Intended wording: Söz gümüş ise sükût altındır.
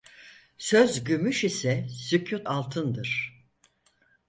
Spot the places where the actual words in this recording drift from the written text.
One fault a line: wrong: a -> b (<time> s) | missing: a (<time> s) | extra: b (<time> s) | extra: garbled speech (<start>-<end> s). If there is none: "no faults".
no faults